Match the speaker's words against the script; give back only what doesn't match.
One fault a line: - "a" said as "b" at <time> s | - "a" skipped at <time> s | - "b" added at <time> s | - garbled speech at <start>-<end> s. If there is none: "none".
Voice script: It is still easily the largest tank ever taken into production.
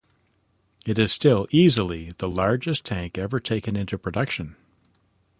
none